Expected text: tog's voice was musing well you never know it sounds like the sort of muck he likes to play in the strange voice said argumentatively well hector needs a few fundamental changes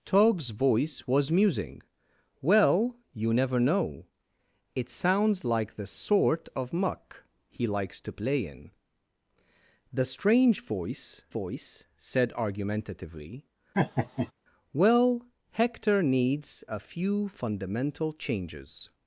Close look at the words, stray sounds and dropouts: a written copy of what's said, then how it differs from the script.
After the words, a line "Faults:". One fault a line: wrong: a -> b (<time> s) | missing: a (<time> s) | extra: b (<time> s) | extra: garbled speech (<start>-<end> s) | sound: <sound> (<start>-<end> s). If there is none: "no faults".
tog's voice was musing well you never know it sounds like the sort of muck he likes to play in the strange voice voice said argumentatively well hector needs a few fundamental changes
Faults:
extra: voice (11.3 s)
sound: laugh (13.7-14.3 s)